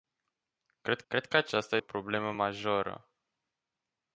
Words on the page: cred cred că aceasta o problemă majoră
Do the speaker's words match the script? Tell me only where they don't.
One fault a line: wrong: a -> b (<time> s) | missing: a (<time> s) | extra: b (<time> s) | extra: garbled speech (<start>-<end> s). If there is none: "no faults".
no faults